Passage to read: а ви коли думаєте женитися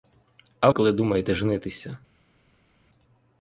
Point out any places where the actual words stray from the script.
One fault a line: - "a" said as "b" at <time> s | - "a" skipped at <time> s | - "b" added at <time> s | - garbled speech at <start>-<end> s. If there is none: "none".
- "ви" skipped at 0.7 s